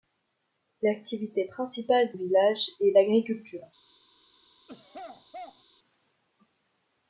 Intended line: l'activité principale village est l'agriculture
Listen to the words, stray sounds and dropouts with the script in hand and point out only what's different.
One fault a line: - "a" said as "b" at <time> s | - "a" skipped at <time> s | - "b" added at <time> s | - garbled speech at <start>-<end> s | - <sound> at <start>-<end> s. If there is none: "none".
- throat clearing at 4.7-5.6 s